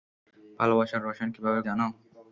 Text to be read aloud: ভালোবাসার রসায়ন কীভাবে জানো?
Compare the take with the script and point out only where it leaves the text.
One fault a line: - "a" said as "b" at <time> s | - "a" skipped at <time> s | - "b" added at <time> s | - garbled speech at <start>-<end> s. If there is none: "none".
none